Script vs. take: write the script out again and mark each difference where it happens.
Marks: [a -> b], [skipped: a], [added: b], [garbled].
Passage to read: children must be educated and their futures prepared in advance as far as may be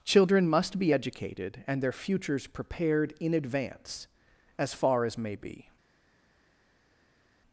children must be educated and their futures prepared in advance as far as may be